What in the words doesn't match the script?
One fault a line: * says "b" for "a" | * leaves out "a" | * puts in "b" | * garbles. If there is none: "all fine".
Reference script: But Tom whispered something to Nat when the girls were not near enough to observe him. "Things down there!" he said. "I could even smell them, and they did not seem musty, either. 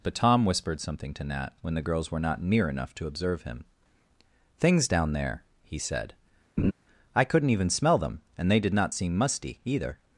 * says "couldn't" for "could"